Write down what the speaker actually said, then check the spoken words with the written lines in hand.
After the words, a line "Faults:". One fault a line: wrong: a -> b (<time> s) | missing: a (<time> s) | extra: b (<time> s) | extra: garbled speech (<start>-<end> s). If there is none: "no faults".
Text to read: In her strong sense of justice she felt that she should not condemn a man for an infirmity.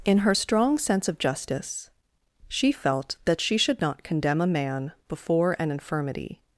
In her strong sense of justice she felt that she should not condemn a man before an infirmity.
Faults:
wrong: for -> before (5.1 s)